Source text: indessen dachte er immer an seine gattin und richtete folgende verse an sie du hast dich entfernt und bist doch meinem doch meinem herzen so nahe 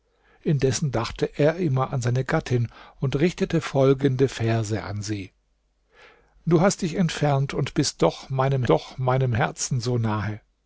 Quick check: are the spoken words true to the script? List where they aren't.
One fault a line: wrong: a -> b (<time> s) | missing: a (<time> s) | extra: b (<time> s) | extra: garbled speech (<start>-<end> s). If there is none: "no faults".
no faults